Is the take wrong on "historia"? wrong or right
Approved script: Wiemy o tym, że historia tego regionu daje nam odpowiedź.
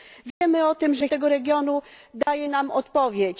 wrong